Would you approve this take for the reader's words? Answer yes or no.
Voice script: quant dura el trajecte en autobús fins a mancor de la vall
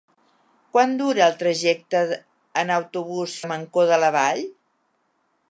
no